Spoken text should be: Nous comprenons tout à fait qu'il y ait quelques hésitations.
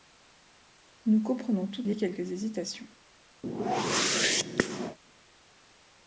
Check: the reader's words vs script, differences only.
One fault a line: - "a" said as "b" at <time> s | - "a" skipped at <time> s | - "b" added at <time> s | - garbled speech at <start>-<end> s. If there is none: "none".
- "à fait qu'il" skipped at 1.8 s